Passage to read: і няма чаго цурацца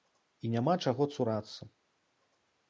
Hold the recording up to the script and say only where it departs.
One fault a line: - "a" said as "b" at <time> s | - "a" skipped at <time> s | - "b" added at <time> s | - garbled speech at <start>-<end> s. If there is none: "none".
none